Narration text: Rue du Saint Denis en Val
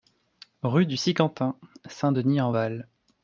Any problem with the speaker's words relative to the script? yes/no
yes